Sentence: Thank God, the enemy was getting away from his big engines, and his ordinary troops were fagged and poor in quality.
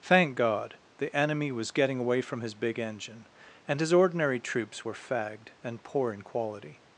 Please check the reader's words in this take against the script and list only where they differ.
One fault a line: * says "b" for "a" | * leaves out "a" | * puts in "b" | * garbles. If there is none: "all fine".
* says "engine" for "engines"